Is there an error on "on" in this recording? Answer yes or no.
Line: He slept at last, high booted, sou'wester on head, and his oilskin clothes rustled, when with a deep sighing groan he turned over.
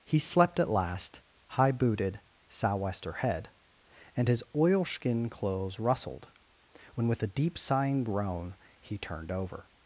yes